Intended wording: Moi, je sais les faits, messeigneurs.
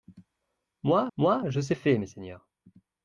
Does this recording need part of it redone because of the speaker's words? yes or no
yes